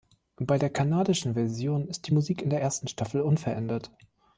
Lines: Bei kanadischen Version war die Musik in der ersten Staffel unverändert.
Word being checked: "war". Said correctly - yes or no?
no